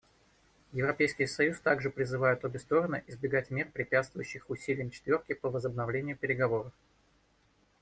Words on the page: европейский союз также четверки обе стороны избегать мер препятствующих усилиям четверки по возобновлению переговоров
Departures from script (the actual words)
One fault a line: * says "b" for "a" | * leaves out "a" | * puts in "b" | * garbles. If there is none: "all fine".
* says "призывает" for "четверки"